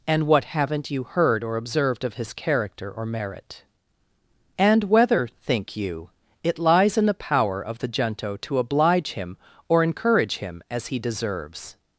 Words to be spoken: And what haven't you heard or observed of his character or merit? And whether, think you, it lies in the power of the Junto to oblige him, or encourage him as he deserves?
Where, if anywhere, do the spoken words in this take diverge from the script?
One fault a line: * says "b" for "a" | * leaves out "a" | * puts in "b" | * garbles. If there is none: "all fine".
all fine